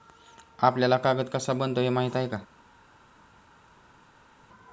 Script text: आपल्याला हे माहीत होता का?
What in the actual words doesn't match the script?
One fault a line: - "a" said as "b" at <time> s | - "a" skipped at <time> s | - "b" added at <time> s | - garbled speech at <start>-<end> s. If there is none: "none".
- "कागद कसा बनतो" added at 1.0 s
- "होता" said as "आहे" at 2.1 s